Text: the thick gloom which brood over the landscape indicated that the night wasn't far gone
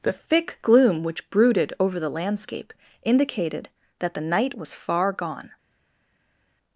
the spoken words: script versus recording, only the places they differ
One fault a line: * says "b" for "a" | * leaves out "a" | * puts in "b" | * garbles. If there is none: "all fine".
* says "brooded" for "brood"
* says "was" for "wasn't"